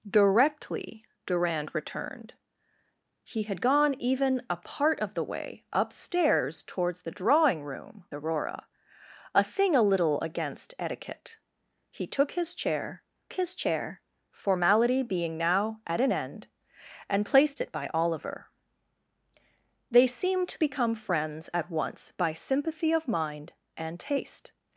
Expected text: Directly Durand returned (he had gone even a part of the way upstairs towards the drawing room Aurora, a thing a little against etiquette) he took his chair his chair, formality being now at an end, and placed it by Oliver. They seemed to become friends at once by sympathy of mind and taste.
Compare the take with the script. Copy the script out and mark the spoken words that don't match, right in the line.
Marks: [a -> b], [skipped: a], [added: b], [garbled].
Directly Durand returned (he had gone even a part of the way upstairs towards the drawing room Aurora, a thing a little against etiquette) he took his chair his chair, formality being now at an end, and placed it by Oliver. They seemed to become friends at once by sympathy of mind and taste.